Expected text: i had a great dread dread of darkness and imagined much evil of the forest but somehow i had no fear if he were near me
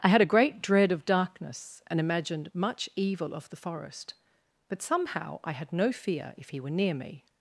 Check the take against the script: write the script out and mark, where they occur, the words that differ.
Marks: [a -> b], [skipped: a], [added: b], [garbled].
i had a great dread [skipped: dread] of darkness and imagined much evil of the forest but somehow i had no fear if he were near me